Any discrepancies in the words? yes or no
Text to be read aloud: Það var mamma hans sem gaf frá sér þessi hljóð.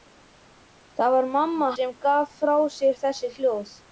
yes